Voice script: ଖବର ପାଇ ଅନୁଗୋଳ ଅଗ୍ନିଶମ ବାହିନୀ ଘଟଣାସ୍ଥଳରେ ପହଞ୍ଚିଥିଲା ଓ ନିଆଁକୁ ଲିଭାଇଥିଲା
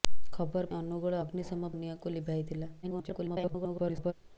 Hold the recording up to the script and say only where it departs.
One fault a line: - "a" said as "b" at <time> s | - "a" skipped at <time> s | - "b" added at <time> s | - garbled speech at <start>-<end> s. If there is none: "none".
- "ପାଇ" skipped at 0.7 s
- "ବାହିନୀ ଘଟଣାସ୍ଥଳରେ ପହଞ୍ଚିଥିଲା" skipped at 1.7 s
- garbled speech at 2.8-4.1 s